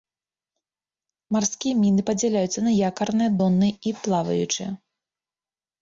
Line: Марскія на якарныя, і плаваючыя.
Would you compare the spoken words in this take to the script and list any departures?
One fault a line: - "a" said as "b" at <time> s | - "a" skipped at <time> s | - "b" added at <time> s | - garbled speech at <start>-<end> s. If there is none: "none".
- "міны падзяляюцца" added at 1.8 s
- "донныя" added at 3.4 s